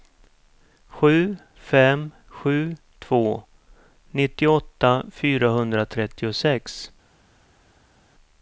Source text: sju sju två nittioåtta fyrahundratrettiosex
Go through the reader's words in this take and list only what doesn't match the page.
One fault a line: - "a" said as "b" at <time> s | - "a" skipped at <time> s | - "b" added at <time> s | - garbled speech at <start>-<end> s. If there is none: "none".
- "fem" added at 1.6 s